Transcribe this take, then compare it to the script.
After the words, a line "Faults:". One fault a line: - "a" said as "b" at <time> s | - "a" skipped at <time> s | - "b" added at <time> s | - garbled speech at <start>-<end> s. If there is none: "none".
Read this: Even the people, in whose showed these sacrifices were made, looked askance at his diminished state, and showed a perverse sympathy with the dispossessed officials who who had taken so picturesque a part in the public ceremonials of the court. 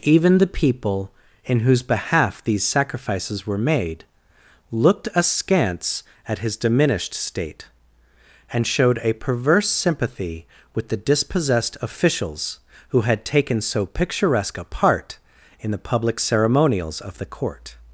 Even the people, in whose behalf these sacrifices were made, looked askance at his diminished state, and showed a perverse sympathy with the dispossessed officials who had taken so picturesque a part in the public ceremonials of the court.
Faults:
- "showed" said as "behalf" at 1.8 s
- "who" skipped at 13.0 s